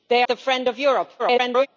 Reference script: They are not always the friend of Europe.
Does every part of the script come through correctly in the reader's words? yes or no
no